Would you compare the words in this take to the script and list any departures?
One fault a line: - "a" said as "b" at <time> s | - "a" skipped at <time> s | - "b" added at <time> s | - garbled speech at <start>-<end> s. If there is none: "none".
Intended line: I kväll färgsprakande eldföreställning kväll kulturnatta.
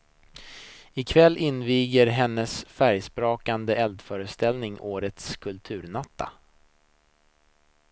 - "inviger hennes" added at 1.4 s
- "kväll" said as "årets" at 4.8 s